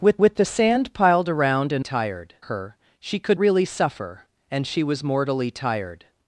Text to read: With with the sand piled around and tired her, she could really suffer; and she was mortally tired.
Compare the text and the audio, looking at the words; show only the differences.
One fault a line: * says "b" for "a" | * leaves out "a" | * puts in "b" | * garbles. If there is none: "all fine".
all fine